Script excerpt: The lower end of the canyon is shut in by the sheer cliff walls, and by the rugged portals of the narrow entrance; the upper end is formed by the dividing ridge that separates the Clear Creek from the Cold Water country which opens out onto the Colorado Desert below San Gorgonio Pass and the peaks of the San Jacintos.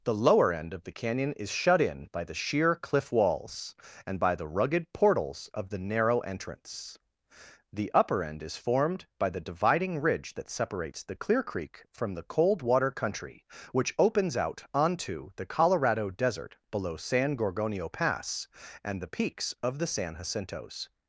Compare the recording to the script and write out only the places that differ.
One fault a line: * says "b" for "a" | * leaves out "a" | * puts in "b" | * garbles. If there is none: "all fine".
all fine